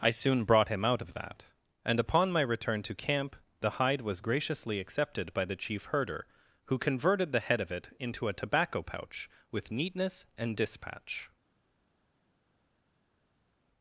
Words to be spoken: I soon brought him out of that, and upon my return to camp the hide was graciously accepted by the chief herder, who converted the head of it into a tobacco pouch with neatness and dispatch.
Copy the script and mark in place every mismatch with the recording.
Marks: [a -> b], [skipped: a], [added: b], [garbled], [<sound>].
I soon brought him out of that, and upon my return to camp the hide was graciously accepted by the chief herder, who converted the head of it into a tobacco pouch with neatness and dispatch.